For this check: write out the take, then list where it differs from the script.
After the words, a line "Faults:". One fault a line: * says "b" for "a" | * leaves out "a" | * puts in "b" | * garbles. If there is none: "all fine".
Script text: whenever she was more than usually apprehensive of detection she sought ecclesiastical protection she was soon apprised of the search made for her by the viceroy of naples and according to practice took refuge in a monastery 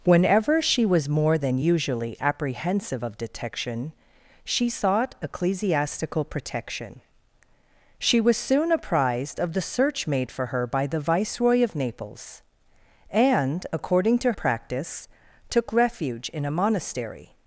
whenever she was more than usually apprehensive of detection she sought ecclesiastical protection she was soon apprised of the search made for her by the viceroy of naples and according to practice took refuge in a monastery
Faults:
all fine